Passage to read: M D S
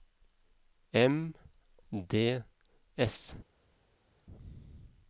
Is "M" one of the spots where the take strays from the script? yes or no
no